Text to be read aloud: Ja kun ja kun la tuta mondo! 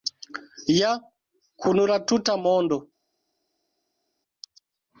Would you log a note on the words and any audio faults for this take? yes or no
yes